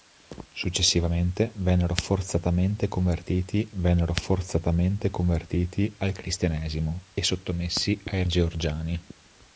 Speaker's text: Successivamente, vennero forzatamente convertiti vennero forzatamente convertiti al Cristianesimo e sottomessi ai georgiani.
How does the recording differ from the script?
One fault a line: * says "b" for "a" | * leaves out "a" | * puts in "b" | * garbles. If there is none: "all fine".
all fine